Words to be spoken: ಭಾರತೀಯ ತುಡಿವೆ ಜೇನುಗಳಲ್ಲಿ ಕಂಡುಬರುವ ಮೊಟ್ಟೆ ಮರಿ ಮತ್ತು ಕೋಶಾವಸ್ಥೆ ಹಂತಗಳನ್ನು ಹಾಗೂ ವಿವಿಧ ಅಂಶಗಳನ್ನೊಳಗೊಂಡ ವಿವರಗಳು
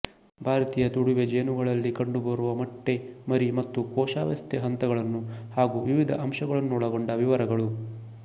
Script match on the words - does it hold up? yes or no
yes